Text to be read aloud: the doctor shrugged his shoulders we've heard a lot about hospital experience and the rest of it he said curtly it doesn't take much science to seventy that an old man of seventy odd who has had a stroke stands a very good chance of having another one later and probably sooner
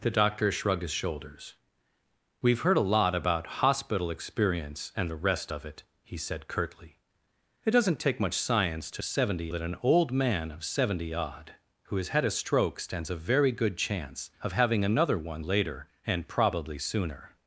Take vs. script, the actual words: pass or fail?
pass